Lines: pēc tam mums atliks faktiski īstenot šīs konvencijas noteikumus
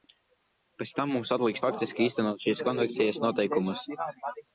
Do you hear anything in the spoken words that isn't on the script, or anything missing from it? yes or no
no